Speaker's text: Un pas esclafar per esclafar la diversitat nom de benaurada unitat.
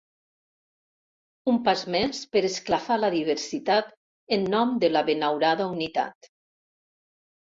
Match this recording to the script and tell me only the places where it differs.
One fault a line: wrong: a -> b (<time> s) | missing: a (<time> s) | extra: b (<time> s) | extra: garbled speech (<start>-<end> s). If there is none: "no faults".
wrong: esclafar -> més (1.9 s)
extra: en (4.4 s)
extra: la (5.0 s)